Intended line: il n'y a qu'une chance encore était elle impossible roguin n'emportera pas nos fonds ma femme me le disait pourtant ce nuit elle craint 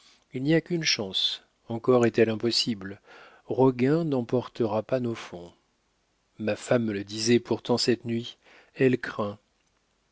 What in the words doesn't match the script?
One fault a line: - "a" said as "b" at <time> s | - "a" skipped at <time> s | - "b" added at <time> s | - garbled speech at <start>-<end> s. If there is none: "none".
- "était" said as "est" at 2.1 s
- "ce" said as "cette" at 7.8 s